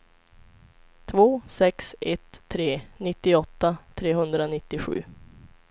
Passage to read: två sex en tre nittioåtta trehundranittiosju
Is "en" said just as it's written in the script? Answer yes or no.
no